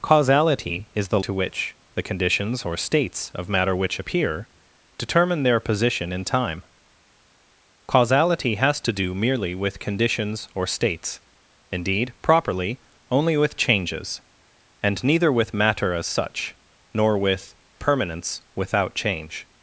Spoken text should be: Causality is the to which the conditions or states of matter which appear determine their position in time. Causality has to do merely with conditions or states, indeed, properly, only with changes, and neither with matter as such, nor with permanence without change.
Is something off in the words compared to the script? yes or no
no